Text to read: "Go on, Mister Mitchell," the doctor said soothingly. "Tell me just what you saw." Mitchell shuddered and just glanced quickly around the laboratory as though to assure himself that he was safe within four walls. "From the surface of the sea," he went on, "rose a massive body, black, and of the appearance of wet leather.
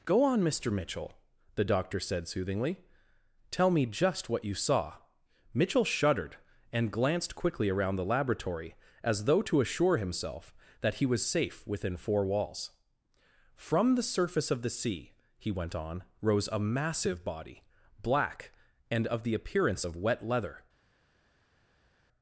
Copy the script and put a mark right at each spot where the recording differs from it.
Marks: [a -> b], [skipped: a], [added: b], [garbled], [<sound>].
"Go on, Mister Mitchell," the doctor said soothingly. "Tell me just what you saw." Mitchell shuddered and [skipped: just] glanced quickly around the laboratory as though to assure himself that he was safe within four walls. "From the surface of the sea," he went on, "rose a massive body, black, and of the appearance of wet leather.